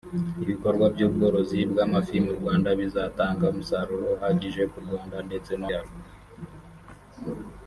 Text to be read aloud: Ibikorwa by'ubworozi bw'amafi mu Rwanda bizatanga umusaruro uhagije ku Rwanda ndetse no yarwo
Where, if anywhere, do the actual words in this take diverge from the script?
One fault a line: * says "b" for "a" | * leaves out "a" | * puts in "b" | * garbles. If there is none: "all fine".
all fine